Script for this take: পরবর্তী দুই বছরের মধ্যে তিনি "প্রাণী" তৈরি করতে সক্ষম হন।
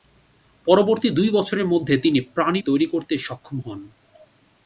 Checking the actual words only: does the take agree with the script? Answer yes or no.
yes